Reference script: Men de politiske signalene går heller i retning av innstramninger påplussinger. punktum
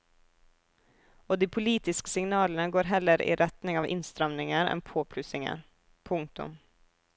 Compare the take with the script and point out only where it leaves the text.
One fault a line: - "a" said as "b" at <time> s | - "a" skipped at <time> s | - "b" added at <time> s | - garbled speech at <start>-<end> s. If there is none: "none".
- "Men" said as "Og" at 1.3 s
- "enn" added at 4.7 s